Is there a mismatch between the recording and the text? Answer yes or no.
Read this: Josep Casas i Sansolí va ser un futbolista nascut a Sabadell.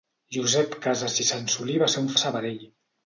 yes